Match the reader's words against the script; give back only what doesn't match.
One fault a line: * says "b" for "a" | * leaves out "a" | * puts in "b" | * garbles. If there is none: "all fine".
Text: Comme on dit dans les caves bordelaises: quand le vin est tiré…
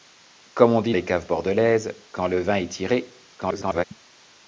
* leaves out "dans"
* garbles